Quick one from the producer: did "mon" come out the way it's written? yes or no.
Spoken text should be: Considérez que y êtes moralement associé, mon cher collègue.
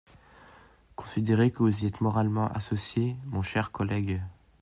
yes